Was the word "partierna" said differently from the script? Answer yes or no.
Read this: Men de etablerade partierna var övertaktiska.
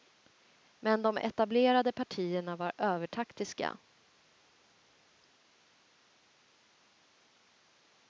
no